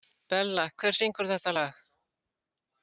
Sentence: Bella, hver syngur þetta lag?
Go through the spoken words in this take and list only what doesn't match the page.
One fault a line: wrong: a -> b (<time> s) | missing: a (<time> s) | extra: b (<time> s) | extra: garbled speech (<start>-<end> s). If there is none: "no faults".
no faults